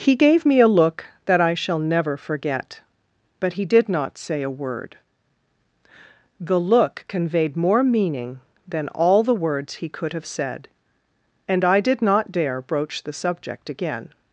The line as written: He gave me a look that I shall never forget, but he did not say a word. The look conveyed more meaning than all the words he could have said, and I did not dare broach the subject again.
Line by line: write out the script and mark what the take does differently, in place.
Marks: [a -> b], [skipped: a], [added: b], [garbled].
He gave me a look that I shall never forget, but he did not say a word. The look conveyed more meaning than all the words he could have said, and I did not dare broach the subject again.